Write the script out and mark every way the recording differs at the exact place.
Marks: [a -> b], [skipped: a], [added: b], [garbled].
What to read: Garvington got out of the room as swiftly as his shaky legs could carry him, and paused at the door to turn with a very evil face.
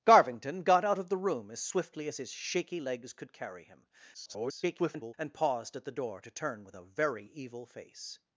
Garvington got out of the room as swiftly as his shaky legs could carry him, [garbled] and paused at the door to turn with a very evil face.